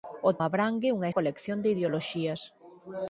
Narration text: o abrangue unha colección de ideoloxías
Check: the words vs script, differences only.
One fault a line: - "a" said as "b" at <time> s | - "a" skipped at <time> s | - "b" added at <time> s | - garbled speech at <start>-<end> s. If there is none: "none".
none